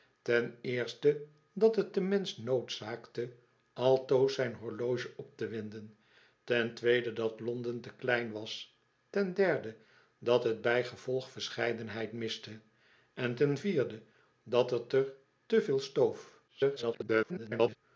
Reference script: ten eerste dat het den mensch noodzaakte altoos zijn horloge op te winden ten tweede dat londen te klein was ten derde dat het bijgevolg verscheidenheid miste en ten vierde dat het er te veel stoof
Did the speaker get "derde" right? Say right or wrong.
right